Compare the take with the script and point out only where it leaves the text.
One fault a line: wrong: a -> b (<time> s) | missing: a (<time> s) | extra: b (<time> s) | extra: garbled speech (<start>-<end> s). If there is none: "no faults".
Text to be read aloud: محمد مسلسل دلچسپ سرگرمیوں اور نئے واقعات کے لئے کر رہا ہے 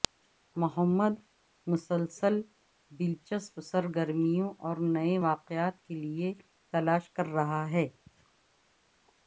extra: تلاش (6.7 s)